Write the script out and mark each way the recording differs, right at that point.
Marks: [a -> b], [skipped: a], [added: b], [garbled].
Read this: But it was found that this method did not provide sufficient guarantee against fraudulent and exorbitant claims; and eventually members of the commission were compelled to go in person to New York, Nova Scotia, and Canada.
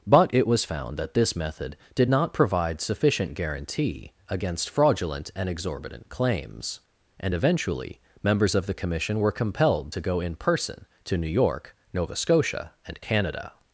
But it was found that this method did not provide sufficient guarantee against fraudulent and exorbitant claims; and eventually members of the commission were compelled to go in person to New York, Nova Scotia, and Canada.